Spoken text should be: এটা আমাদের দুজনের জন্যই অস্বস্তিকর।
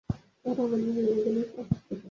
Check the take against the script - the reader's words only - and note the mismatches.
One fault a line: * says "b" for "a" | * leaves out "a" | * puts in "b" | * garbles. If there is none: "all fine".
all fine